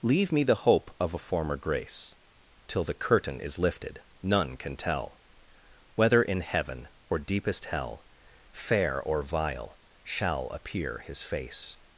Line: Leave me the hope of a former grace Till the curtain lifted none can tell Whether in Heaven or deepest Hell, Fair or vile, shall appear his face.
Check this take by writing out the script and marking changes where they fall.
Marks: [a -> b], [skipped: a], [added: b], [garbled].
Leave me the hope of a former grace Till the curtain [added: is] lifted none can tell Whether in Heaven or deepest Hell, Fair or vile, shall appear his face.